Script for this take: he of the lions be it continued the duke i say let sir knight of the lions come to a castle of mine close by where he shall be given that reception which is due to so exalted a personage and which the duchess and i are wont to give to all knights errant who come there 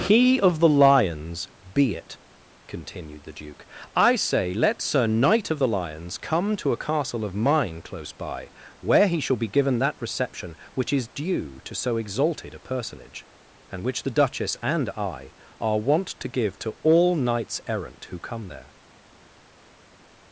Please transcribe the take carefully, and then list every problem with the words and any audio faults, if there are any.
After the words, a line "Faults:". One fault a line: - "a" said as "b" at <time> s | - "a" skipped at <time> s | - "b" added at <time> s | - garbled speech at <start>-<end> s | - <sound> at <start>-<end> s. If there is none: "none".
he of the lions be it continued the duke i say let sir knight of the lions come to a castle of mine close by where he shall be given that reception which is due to so exalted a personage and which the duchess and i are wont to give to all knights errant who come there
Faults:
none